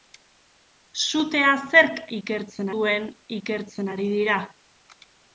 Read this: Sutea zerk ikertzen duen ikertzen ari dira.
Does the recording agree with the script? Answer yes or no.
yes